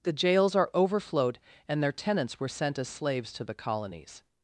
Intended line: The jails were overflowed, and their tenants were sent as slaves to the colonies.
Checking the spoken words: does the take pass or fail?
fail